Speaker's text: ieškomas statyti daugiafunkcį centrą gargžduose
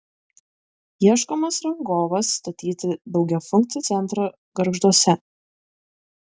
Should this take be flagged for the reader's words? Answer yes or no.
yes